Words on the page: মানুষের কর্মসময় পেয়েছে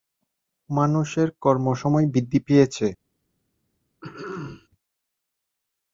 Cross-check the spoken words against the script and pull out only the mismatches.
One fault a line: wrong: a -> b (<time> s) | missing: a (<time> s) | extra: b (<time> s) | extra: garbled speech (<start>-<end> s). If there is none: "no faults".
extra: বৃদ্ধি (2.1 s)